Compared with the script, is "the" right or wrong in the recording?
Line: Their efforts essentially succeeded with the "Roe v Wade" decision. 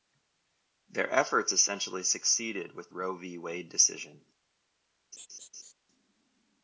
wrong